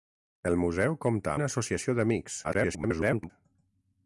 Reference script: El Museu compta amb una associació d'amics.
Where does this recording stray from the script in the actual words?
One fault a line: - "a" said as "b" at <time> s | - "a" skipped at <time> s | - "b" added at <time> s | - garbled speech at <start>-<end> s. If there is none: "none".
- "amb" skipped at 1.4 s
- garbled speech at 2.4-3.3 s